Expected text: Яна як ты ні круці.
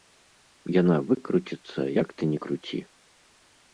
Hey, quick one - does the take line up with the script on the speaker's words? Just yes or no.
no